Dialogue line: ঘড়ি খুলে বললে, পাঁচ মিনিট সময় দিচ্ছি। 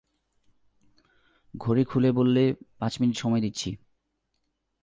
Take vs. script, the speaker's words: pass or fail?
pass